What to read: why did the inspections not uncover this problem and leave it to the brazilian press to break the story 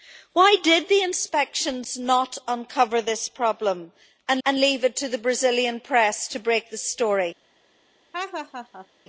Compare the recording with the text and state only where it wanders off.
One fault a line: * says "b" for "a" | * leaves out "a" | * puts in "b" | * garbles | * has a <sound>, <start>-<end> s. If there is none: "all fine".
* puts in "and"
* has a laugh, 8.1-8.9 s